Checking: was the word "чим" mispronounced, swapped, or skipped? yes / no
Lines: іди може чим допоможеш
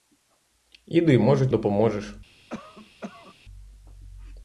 yes